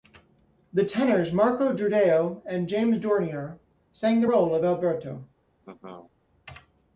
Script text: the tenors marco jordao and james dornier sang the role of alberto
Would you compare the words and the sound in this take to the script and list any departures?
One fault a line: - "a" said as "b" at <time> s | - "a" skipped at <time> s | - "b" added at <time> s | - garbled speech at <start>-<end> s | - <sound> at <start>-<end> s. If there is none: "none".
- laugh at 5.6-6.1 s